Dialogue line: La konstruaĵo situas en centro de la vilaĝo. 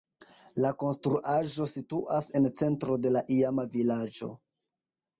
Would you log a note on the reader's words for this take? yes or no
yes